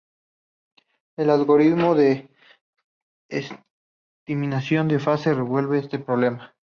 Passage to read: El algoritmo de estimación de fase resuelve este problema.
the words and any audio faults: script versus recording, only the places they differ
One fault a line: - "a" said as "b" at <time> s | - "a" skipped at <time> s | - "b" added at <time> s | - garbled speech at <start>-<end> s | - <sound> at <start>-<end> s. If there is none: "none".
none